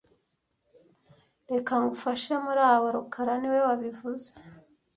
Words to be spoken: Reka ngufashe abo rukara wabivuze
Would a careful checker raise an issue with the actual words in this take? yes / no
yes